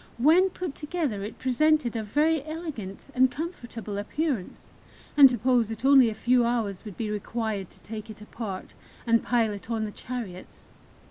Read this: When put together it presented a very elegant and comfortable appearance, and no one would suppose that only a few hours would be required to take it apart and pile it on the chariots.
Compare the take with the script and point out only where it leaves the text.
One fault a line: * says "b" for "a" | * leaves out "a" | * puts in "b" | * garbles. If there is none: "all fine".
* leaves out "no one would"